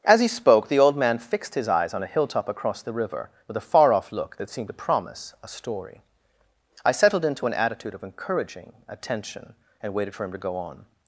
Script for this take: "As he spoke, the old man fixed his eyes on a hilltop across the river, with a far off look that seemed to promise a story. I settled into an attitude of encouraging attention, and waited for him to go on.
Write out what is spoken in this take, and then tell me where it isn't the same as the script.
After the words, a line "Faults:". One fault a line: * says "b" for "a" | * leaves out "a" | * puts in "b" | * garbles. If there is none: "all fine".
"As he spoke, the old man fixed his eyes on a hilltop across the river, with a far off look that seemed to promise a story. I settled into an attitude of encouraging attention, and waited for him to go on.
Faults:
all fine